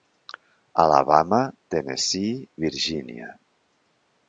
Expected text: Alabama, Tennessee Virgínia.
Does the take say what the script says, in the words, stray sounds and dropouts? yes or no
yes